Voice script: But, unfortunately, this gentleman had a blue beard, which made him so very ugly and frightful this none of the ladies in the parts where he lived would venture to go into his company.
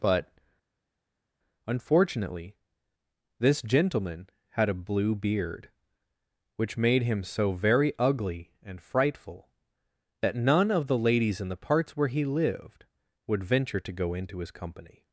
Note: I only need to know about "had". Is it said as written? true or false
true